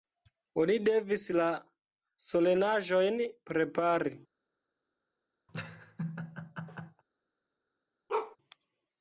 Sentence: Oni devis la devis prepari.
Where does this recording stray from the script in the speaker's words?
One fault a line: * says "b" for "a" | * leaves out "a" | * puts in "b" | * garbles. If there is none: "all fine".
* says "solenaĵojn" for "devis"